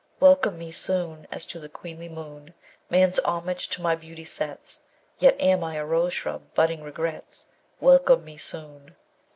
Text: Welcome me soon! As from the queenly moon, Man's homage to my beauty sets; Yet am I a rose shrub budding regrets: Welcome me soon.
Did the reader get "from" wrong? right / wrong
wrong